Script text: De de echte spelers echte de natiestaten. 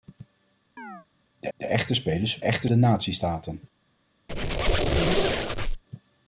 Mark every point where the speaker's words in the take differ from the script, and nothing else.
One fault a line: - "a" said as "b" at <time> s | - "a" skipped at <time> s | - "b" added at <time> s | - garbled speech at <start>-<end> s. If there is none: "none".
none